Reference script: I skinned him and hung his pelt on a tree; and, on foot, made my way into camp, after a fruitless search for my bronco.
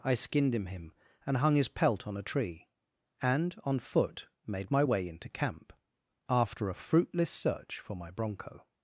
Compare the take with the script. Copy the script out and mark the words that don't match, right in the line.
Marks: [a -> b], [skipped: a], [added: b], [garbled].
I skinned him [added: him] and hung his pelt on a tree; and, on foot, made my way into camp, after a fruitless search for my bronco.